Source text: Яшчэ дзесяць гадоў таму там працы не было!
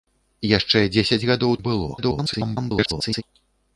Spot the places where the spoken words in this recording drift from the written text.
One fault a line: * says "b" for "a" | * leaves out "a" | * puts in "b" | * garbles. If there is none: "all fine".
* leaves out "таму там працы"
* garbles